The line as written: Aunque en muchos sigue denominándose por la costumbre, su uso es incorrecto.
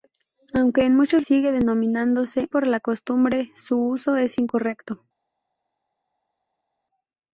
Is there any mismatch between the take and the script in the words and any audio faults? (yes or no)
no